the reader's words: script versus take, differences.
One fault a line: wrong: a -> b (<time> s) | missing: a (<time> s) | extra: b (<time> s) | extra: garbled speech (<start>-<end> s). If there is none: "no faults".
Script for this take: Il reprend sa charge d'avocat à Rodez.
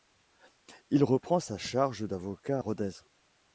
no faults